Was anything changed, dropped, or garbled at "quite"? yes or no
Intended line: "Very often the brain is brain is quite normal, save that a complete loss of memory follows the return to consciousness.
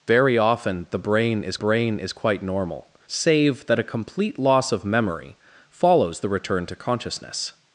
no